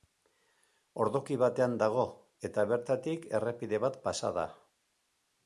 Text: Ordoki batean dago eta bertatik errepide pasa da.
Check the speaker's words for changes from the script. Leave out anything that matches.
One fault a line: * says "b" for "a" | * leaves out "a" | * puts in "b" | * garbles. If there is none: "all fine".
* puts in "bat"